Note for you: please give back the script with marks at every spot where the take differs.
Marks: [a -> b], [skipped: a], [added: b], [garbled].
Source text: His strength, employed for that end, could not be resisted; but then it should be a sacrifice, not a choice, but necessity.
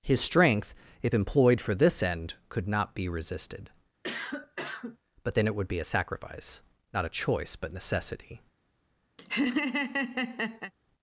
His strength, [added: if] employed for [that -> this] end, could not be resisted; but then it [should -> would] be a sacrifice, not a choice, but necessity.